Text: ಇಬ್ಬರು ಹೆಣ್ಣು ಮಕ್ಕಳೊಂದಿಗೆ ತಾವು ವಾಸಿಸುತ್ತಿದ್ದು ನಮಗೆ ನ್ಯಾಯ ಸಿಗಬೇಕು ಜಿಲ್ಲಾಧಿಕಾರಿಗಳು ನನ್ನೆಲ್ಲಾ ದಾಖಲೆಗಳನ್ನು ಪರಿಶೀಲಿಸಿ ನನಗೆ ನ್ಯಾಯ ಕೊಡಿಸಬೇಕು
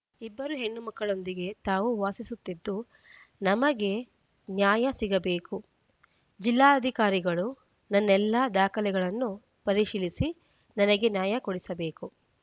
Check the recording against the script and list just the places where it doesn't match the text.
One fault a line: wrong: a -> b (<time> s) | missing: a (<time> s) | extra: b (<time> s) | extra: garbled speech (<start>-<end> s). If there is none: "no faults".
no faults